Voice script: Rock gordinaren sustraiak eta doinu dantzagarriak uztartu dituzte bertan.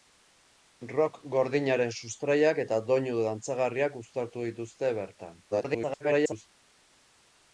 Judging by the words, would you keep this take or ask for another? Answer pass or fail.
fail